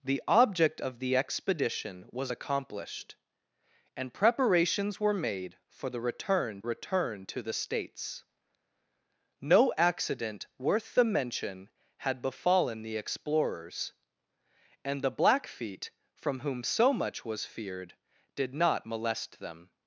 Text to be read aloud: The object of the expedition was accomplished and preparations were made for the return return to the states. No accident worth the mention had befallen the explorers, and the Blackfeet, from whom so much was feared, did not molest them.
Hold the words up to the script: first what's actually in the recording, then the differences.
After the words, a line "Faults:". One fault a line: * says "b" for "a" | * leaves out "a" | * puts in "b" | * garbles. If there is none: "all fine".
The object of the expedition was accomplished and preparations were made for the return return to the states. No accident worth the mention had befallen the explorers, and the Blackfeet, from whom so much was feared, did not molest them.
Faults:
all fine